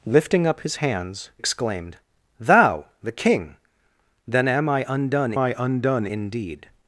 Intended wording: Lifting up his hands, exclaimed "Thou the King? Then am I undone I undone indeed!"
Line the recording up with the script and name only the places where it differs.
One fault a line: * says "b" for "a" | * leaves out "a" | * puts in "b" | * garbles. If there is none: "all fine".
all fine